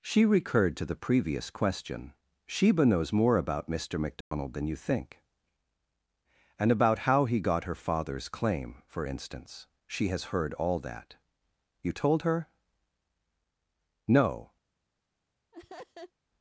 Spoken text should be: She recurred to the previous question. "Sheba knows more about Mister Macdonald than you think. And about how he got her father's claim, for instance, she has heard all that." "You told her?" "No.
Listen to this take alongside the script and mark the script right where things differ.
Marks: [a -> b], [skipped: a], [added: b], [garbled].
She recurred to the previous question. "Sheba knows more about Mister Macdonald than you think. And about how he got her father's claim, for instance, she has heard all that." "You told her?" "No.